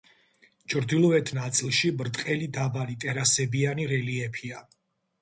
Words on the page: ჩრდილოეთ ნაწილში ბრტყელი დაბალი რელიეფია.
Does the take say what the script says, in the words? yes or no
no